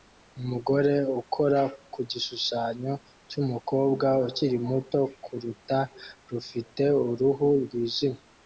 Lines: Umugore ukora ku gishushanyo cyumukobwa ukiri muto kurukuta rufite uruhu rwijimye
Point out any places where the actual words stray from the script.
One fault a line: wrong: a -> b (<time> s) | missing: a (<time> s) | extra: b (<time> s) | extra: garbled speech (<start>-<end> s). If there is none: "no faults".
no faults